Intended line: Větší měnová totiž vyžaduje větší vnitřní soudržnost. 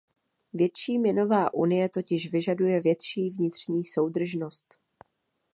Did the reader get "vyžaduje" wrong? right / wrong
right